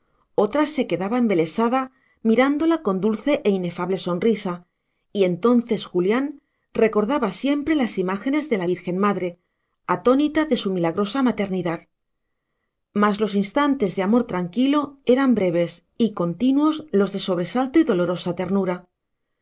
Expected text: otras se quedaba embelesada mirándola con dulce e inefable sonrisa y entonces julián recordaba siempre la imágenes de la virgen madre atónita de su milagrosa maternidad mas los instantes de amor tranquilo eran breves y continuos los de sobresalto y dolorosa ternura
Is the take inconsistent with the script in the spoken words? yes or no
yes